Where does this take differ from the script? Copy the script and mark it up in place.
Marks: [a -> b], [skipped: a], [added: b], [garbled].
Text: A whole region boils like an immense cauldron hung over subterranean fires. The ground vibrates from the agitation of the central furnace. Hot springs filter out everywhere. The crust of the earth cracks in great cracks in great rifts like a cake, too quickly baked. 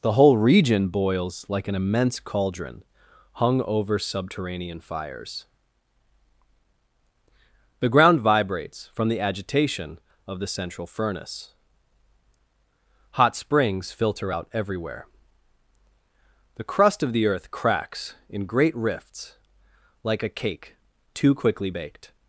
[A -> The] whole region boils like an immense cauldron hung over subterranean fires. The ground vibrates from the agitation of the central furnace. Hot springs filter out everywhere. The crust of the earth cracks in great [skipped: cracks in great] rifts like a cake, too quickly baked.